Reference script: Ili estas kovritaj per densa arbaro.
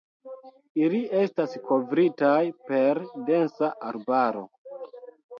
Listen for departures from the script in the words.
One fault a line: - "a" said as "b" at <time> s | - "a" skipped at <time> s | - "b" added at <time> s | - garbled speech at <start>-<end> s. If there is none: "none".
none